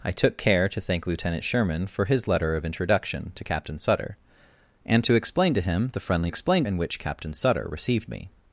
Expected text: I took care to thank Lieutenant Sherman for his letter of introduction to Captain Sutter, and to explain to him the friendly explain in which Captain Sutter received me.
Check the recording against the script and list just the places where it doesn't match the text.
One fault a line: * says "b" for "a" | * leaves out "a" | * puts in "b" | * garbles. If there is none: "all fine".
all fine